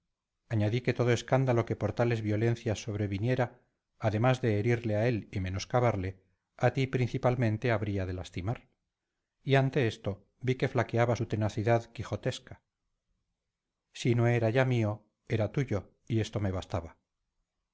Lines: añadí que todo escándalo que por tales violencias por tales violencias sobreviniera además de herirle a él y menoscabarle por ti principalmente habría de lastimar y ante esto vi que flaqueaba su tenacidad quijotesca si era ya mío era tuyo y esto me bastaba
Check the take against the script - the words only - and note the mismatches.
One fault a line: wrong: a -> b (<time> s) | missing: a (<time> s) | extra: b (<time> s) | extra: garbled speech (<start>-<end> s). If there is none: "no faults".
missing: por tales violencias (2.8 s)
wrong: por -> a (6.6 s)
extra: no (14.1 s)